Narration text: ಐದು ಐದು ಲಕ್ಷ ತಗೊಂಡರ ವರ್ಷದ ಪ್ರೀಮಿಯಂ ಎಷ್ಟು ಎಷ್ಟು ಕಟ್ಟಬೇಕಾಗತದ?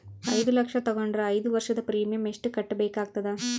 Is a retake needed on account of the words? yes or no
yes